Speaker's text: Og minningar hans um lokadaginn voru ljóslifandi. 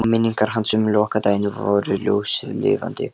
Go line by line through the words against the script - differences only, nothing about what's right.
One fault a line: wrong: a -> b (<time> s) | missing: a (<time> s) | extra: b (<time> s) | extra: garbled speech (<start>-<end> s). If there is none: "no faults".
no faults